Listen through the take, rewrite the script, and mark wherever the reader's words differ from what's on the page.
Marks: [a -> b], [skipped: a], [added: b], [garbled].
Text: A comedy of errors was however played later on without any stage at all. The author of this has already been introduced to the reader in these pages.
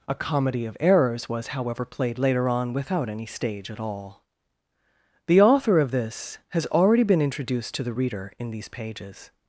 A comedy of errors was however played later on without any stage at all. The author of this has already been introduced to the reader in these pages.